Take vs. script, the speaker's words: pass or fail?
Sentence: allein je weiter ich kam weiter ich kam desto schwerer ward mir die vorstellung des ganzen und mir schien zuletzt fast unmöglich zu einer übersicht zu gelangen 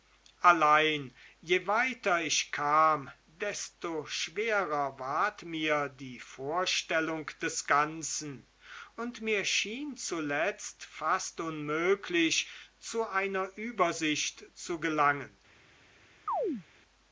fail